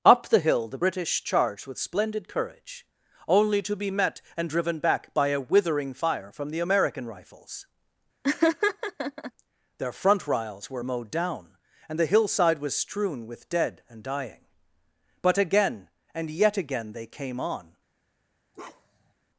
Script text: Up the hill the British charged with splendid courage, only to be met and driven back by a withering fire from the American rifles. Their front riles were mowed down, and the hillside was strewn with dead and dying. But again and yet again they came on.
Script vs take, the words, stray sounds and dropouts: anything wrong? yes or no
yes